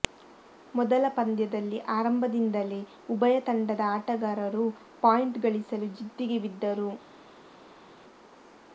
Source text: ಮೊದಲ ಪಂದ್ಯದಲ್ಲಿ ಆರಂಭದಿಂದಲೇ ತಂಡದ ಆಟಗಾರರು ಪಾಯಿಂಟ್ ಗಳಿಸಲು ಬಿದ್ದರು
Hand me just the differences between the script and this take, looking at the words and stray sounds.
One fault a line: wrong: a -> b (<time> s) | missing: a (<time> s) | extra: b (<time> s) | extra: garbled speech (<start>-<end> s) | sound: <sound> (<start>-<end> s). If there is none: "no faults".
extra: ಉಭಯ (3.1 s)
extra: ಜಿದ್ದಿಗೆ (6.0 s)